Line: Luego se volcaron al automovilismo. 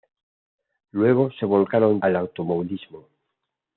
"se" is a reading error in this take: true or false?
false